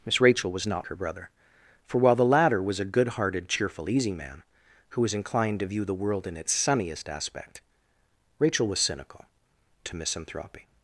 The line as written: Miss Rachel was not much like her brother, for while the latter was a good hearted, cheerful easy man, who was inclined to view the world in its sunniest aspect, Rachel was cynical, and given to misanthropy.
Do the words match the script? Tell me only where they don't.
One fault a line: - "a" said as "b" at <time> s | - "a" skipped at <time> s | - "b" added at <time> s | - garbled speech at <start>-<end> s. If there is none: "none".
- "much like" skipped at 0.9 s
- "and given" skipped at 9.2 s